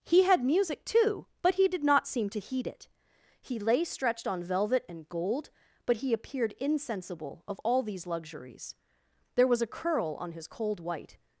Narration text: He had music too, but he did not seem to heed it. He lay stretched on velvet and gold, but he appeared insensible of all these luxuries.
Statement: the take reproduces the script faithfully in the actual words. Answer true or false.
false